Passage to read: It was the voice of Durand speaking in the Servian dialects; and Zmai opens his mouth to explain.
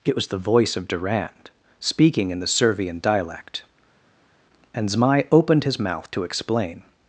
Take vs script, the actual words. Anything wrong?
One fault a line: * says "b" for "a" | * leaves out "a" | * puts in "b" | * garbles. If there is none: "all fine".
* says "dialect" for "dialects"
* says "opened" for "opens"